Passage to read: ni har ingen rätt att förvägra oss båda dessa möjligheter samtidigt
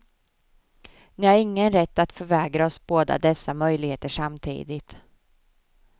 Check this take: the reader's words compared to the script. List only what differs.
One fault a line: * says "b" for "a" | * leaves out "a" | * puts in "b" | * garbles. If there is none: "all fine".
all fine